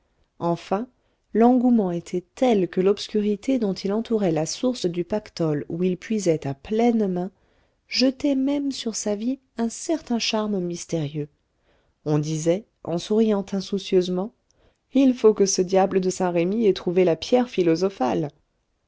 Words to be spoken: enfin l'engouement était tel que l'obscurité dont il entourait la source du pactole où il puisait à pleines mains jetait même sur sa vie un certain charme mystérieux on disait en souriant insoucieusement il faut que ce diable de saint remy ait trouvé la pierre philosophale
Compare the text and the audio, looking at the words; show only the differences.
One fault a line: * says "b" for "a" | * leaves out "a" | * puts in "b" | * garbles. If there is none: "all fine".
all fine